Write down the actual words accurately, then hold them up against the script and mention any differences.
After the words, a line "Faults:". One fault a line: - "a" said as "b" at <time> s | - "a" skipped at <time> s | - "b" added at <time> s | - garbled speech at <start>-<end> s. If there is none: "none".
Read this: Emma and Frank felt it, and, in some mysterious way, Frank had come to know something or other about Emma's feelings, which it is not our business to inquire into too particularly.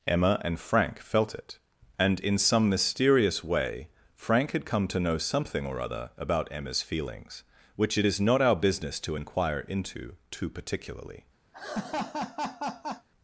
Emma and Frank felt it, and, in some mysterious way, Frank had come to know something or other about Emma's feelings, which it is not our business to inquire into too particularly.
Faults:
none